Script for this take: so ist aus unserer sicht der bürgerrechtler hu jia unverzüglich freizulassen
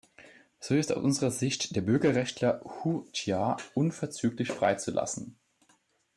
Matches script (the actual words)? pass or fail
pass